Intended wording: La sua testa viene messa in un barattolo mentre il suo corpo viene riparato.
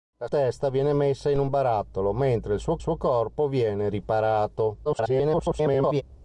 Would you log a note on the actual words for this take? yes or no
yes